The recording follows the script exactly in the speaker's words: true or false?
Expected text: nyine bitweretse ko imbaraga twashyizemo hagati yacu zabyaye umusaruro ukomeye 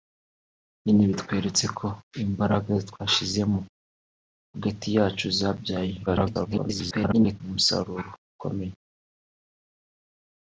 false